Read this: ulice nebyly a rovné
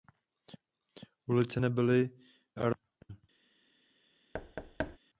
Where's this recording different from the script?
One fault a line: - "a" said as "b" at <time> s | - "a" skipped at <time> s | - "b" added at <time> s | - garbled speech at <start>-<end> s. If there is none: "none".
none